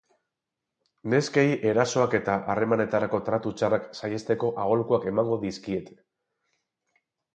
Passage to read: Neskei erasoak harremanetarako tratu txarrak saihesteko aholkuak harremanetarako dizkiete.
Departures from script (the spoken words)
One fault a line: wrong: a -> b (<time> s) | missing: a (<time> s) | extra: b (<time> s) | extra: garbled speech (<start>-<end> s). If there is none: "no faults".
extra: eta (2.2 s)
wrong: harremanetarako -> emango (5.1 s)